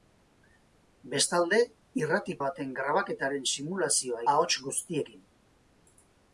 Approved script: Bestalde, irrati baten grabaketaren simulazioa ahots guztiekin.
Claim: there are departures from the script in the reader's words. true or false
false